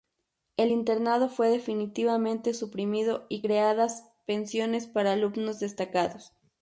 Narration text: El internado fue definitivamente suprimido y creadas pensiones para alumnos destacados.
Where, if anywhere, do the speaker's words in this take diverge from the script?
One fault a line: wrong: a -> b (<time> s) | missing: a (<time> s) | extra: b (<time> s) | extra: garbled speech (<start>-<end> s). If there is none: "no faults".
no faults